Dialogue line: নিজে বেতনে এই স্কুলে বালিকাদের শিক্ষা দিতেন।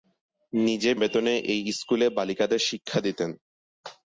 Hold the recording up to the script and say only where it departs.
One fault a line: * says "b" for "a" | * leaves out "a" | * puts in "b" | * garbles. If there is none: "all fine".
all fine